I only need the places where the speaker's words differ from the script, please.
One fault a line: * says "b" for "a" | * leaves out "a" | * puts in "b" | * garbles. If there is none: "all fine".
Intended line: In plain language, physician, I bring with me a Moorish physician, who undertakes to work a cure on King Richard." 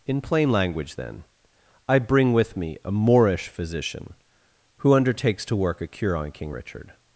* says "then" for "physician"